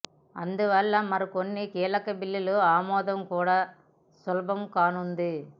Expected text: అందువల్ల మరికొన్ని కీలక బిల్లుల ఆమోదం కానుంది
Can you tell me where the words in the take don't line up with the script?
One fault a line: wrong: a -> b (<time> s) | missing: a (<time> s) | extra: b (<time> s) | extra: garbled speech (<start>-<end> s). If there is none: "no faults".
extra: కూడా సులభం (3.3 s)